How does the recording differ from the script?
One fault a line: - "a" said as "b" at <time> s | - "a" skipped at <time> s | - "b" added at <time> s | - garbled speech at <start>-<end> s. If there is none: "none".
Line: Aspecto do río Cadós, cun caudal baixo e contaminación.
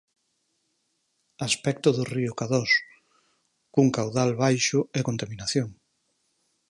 none